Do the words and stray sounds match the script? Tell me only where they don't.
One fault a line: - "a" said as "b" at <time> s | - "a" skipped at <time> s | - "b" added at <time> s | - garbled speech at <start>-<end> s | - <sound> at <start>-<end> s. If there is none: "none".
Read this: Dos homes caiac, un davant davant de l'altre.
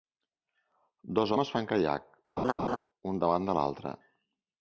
- "fan" added at 1.5 s
- laugh at 2.4-2.8 s
- "davant" skipped at 3.5 s